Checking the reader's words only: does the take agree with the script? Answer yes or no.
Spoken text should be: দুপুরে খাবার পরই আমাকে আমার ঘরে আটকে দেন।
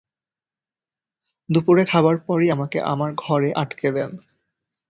yes